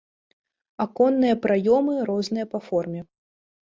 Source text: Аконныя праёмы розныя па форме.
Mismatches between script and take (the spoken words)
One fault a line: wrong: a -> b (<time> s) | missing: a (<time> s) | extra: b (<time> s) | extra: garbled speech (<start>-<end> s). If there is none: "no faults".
no faults